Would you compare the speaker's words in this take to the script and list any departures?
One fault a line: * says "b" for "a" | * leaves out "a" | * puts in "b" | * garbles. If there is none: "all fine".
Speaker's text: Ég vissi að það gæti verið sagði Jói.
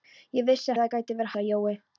all fine